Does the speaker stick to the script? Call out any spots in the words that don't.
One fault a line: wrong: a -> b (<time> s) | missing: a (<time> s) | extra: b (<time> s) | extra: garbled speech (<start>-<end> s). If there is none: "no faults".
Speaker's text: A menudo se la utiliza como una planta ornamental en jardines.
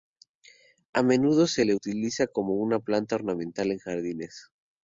no faults